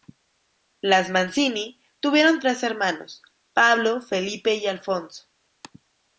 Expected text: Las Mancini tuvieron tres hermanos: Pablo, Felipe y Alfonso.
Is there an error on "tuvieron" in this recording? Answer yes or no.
no